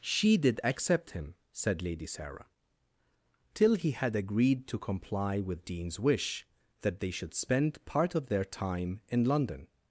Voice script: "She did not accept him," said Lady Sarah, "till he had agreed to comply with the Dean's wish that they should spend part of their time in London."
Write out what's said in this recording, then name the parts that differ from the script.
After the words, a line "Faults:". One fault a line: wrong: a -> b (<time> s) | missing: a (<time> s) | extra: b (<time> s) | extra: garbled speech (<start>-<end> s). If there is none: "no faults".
"She did accept him," said Lady Sarah, "till he had agreed to comply with Dean's wish that they should spend part of their time in London."
Faults:
missing: not (0.6 s)
missing: the (5.6 s)